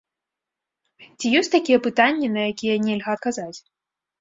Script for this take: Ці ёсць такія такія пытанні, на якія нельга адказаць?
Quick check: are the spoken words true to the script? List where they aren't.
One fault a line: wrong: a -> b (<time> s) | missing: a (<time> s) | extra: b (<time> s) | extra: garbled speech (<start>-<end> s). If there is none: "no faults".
missing: такія (1.8 s)